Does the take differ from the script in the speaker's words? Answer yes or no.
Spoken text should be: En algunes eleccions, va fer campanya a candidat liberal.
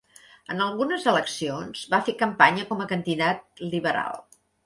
yes